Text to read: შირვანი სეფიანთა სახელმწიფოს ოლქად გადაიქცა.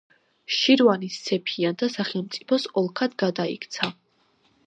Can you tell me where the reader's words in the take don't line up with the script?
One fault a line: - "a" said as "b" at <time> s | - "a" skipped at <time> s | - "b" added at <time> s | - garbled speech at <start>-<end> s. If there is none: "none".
none